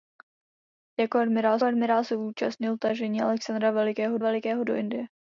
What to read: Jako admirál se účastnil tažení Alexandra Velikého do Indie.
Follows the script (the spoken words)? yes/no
no